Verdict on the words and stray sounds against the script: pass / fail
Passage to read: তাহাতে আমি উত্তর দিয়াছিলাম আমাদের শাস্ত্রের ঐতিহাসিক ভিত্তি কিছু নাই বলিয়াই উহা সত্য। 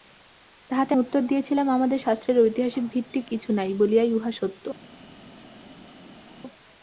fail